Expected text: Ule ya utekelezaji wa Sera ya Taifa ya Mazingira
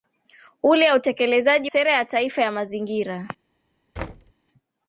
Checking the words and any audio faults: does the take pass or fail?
fail